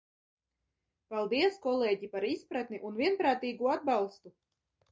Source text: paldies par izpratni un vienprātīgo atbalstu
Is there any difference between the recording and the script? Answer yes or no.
yes